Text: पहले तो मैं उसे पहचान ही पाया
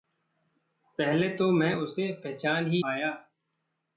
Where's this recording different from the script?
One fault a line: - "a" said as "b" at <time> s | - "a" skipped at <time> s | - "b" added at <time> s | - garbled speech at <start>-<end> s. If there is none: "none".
none